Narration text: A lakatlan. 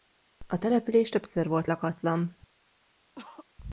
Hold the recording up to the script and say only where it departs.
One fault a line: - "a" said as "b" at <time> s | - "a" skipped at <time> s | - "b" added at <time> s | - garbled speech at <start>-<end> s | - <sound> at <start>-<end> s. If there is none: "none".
- "település többször volt" added at 0.6 s
- cough at 3.2-3.5 s